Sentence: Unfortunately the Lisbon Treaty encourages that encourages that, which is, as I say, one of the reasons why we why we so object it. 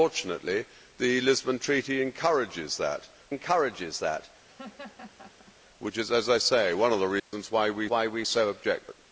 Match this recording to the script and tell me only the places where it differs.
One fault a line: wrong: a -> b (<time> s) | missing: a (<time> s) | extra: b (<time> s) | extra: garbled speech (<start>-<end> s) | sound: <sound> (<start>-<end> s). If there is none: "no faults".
sound: laugh (4.5-5.5 s)
sound: dropout (7.2-7.3 s)